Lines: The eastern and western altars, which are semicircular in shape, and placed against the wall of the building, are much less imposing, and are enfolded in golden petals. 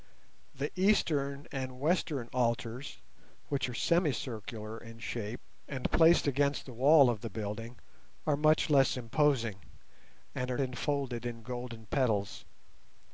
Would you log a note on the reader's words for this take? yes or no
no